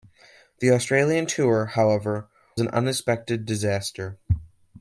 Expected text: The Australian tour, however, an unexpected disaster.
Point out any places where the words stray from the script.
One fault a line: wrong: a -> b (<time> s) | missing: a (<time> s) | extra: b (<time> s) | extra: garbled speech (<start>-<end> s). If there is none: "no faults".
no faults